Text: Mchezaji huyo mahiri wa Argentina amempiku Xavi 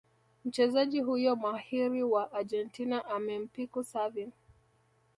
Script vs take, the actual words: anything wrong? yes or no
no